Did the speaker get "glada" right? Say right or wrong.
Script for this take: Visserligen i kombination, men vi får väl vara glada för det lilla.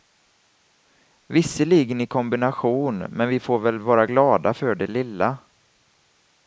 right